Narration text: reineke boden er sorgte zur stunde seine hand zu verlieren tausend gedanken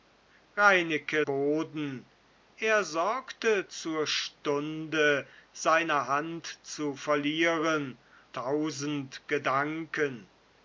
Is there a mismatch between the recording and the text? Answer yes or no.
no